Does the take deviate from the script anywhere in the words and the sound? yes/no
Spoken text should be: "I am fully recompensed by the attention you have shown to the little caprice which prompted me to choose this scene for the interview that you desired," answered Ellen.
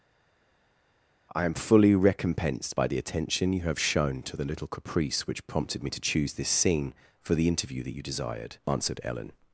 no